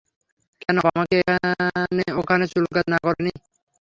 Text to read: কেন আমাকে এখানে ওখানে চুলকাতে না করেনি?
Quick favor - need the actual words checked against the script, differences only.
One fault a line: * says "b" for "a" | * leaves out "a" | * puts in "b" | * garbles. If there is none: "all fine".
all fine